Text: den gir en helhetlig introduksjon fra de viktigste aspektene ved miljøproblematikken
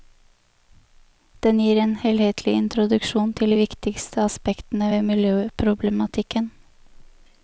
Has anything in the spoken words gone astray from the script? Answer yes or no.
yes